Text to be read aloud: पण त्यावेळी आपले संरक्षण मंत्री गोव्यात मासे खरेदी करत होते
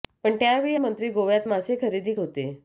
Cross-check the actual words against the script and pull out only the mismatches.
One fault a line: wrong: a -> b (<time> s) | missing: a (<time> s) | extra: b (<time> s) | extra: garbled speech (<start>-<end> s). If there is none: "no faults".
missing: आपले संरक्षण (0.8 s)
missing: करत (2.1 s)